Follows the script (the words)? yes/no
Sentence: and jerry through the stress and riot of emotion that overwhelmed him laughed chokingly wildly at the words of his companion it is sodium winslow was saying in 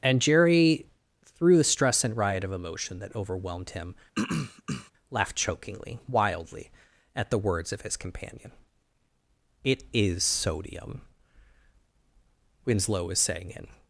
yes